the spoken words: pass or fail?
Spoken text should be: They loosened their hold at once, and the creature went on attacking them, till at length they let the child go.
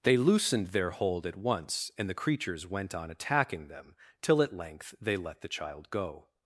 fail